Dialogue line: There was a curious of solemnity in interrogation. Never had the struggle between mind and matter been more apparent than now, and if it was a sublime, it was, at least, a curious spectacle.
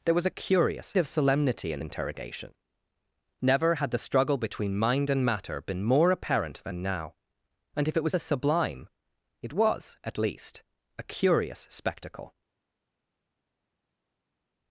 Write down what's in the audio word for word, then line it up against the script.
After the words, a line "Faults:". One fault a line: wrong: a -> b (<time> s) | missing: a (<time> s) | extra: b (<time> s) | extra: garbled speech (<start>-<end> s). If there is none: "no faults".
There was a curious of solemnity in interrogation. Never had the struggle between mind and matter been more apparent than now, and if it was a sublime, it was, at least, a curious spectacle.
Faults:
no faults